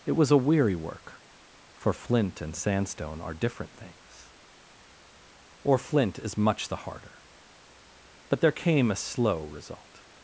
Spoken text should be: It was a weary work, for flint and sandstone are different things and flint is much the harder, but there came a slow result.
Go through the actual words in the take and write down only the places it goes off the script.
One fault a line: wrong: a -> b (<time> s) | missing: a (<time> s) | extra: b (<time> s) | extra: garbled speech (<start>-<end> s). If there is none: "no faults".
wrong: and -> or (5.6 s)